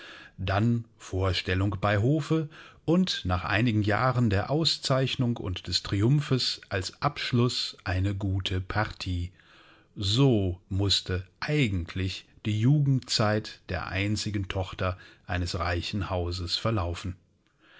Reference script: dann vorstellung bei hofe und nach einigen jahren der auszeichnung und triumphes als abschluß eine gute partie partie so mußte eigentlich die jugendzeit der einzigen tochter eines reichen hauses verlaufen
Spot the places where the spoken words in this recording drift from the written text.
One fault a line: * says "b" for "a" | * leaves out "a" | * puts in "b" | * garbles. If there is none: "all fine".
* puts in "des"
* leaves out "partie"